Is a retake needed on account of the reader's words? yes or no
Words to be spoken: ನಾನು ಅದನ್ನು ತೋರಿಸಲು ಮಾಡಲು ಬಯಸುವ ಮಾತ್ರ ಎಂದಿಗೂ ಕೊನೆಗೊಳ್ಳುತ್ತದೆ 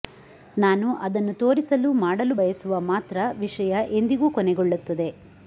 yes